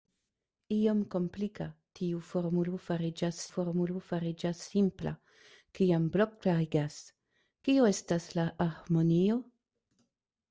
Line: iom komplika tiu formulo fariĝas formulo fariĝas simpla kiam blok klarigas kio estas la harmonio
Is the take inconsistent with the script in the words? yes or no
no